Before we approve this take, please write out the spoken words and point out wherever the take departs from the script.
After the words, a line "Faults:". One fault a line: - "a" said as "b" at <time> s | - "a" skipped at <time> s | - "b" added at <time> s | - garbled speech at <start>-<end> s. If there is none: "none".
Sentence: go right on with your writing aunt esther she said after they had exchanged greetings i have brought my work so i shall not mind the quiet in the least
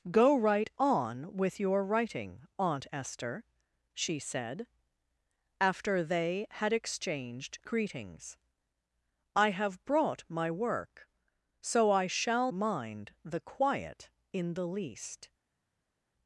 go right on with your writing aunt esther she said after they had exchanged greetings i have brought my work so i shall mind the quiet in the least
Faults:
- "not" skipped at 12.5 s